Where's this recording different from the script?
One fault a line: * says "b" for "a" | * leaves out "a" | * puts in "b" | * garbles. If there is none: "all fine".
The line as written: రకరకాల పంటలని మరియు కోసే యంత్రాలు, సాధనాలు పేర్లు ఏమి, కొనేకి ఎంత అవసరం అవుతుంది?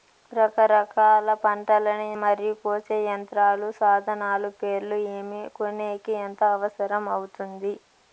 all fine